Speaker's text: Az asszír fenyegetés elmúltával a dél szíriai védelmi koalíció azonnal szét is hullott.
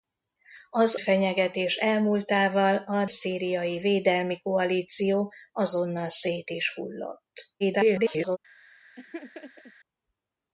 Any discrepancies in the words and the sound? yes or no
yes